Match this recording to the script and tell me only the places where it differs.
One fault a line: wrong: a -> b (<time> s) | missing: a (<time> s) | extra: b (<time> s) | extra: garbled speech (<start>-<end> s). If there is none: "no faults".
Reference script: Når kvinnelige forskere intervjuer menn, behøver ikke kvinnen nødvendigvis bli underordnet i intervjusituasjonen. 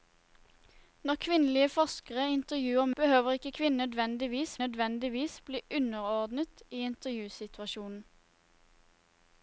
missing: menn (2.9 s)
extra: nødvendigvis (4.6 s)